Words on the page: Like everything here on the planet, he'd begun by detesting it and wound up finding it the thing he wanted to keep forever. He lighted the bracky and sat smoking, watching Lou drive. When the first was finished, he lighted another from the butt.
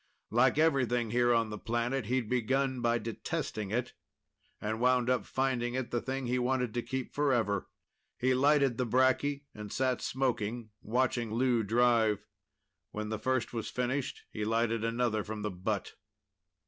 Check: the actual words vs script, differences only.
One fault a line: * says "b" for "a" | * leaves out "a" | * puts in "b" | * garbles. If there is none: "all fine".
all fine